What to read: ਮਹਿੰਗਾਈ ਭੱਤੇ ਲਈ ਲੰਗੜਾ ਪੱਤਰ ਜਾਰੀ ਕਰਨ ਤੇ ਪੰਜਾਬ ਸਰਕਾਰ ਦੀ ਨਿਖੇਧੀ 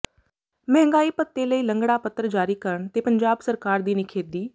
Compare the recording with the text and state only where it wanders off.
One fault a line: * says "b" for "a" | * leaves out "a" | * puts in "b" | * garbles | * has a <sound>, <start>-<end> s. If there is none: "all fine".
all fine